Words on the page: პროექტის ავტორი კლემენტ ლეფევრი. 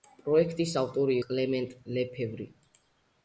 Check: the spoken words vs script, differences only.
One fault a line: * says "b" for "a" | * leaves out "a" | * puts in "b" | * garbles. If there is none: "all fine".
all fine